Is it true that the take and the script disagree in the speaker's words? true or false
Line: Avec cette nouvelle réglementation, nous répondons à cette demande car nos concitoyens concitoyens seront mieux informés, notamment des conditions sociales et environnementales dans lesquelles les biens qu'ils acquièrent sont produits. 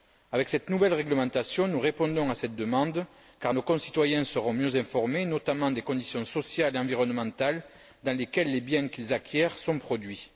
true